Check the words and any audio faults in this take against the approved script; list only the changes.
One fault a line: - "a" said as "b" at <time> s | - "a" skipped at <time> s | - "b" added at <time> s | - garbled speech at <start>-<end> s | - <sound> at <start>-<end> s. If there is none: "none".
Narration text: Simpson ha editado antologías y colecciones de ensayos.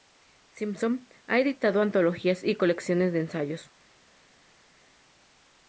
none